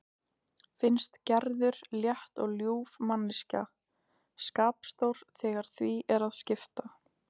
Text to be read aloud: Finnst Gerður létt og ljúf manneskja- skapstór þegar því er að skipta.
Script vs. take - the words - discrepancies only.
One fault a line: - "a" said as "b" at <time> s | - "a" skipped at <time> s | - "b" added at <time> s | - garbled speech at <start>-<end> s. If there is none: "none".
none